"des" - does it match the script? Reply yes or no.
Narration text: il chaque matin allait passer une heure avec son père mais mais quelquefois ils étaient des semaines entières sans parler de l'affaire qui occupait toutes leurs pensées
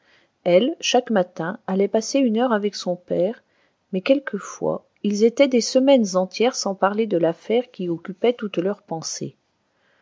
yes